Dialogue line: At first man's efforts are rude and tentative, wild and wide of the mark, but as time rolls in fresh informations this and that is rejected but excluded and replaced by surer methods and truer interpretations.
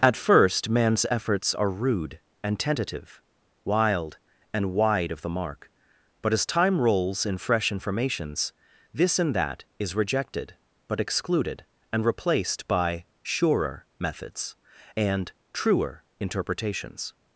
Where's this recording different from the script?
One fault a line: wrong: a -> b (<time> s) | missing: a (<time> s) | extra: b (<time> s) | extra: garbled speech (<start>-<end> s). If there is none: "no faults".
no faults